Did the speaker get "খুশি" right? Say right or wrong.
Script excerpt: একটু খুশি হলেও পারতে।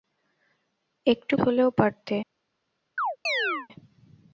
wrong